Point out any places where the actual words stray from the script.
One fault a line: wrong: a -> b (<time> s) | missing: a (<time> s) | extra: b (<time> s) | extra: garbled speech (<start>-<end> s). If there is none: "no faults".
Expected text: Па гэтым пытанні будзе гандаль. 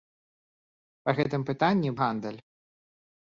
missing: будзе (1.9 s)